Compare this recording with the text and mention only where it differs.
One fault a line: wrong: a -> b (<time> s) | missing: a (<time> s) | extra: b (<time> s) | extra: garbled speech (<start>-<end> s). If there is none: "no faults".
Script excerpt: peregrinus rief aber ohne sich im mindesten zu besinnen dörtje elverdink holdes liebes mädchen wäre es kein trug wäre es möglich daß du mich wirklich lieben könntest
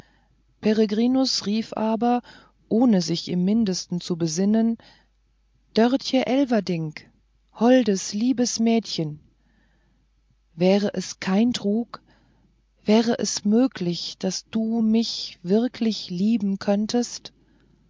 no faults